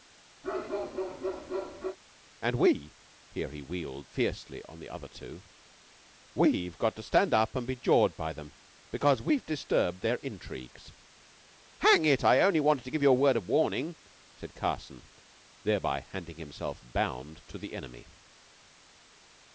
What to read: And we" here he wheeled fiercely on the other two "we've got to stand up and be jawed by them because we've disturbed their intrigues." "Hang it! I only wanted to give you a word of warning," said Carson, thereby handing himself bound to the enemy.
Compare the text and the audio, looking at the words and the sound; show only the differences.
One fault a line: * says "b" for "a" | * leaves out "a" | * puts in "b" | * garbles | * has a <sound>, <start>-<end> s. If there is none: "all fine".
* has a bark, 0.4-2.0 s